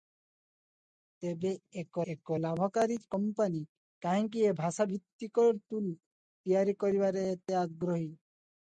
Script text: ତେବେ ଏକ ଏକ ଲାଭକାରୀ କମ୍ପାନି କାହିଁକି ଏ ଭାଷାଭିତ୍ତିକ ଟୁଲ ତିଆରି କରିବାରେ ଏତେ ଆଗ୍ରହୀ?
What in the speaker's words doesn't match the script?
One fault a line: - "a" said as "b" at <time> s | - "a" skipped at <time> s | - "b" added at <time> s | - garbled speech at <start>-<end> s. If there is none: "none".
none